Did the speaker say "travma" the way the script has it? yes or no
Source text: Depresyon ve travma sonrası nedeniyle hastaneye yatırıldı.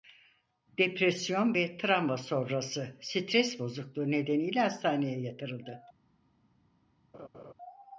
yes